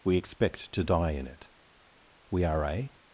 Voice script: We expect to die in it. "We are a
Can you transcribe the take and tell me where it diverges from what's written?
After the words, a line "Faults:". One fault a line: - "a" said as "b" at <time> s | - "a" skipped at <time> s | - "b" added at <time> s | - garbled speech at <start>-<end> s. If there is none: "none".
We expect to die in it. "We are a
Faults:
none